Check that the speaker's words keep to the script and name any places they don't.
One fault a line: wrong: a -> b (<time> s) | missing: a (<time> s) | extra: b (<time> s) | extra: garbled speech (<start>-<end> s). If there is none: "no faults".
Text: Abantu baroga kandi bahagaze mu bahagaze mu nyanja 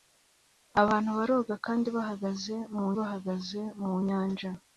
no faults